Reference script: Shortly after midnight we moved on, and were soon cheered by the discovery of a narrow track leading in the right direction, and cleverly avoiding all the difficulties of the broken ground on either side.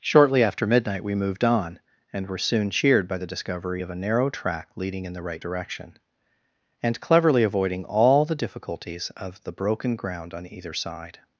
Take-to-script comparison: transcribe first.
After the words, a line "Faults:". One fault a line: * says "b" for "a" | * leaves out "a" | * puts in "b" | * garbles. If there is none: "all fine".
Shortly after midnight we moved on, and were soon cheered by the discovery of a narrow track leading in the right direction, and cleverly avoiding all the difficulties of the broken ground on either side.
Faults:
all fine